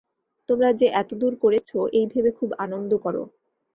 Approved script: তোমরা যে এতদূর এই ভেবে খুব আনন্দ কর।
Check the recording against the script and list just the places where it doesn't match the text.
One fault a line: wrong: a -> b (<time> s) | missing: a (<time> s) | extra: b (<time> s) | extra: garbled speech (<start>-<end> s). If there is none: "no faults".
extra: করেছ (1.4 s)